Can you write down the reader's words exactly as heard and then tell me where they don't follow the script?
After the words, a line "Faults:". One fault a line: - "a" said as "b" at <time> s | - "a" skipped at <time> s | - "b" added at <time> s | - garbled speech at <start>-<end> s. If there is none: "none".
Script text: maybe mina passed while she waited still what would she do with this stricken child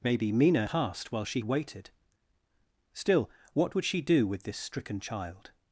maybe mina passed while she waited still what would she do with this stricken child
Faults:
none